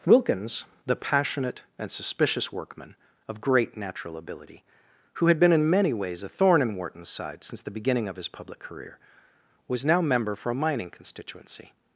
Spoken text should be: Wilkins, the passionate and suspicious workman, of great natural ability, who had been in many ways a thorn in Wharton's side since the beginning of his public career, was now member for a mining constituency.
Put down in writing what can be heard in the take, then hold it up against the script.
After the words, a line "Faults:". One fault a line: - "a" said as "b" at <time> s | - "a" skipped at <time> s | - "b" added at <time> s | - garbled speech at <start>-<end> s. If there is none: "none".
Wilkins, the passionate and suspicious workman, of great natural ability, who had been in many ways a thorn in Wharton's side since the beginning of his public career, was now member for a mining constituency.
Faults:
none